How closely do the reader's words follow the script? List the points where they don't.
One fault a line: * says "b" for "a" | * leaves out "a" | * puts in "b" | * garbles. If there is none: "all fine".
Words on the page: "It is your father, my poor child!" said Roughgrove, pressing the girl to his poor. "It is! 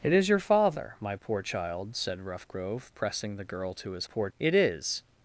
all fine